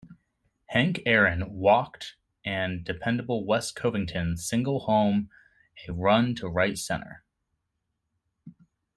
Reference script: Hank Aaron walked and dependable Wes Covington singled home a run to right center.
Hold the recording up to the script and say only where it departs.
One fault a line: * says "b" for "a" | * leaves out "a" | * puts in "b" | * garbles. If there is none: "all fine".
all fine